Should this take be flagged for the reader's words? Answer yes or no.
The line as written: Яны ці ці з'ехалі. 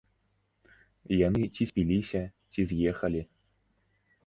yes